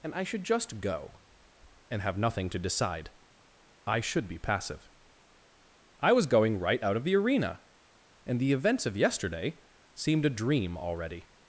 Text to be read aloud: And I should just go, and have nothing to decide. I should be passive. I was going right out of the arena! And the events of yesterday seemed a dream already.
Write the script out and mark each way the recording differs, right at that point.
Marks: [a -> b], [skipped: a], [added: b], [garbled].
And I should just go, and have nothing to decide. I should be passive. I was going right out of the arena! And the events of yesterday seemed a dream already.